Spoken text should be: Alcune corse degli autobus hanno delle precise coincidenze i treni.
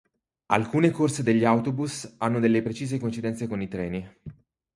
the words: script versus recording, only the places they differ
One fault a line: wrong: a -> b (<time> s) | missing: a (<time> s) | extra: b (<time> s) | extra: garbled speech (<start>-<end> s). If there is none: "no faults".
extra: con (3.5 s)